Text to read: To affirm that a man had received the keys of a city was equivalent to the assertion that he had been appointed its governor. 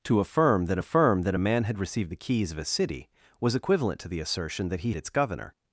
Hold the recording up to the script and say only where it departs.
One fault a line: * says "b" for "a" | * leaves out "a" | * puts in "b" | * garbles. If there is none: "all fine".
* puts in "affirm that"
* leaves out "had been appointed"